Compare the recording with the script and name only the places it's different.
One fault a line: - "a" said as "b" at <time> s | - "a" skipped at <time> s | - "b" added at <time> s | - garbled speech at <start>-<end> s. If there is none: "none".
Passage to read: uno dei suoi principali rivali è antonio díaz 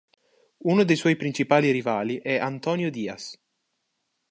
none